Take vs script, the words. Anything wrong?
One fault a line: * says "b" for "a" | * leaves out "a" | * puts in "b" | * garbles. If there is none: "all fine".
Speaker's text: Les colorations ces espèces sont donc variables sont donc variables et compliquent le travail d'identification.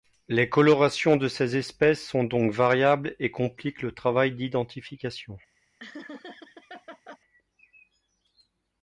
* puts in "de"
* leaves out "sont donc variables"